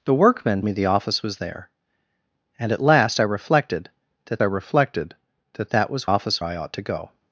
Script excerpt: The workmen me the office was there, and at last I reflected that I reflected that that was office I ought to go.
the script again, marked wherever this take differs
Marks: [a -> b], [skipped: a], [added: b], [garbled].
The workmen me the office was there, and at last I reflected that I reflected that that was office I ought to go.